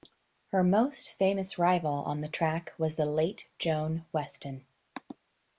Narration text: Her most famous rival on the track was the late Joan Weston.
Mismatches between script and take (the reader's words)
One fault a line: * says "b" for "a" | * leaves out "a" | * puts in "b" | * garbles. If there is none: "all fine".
all fine